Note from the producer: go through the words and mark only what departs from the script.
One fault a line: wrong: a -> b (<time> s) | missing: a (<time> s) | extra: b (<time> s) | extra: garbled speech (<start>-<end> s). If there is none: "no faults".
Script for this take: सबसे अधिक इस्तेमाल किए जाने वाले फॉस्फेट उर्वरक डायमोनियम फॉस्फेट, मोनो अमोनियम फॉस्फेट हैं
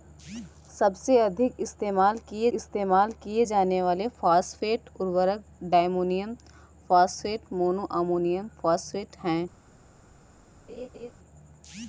extra: इस्तेमाल किए (2.5 s)